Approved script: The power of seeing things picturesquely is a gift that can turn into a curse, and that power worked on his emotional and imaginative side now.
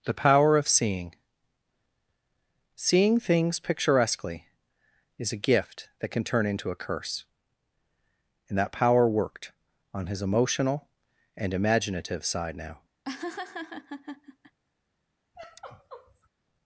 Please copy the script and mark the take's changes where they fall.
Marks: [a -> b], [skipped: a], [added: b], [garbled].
The power of seeing [added: seeing] things picturesquely is a gift that can turn into a curse, and that power worked on his emotional and imaginative side now.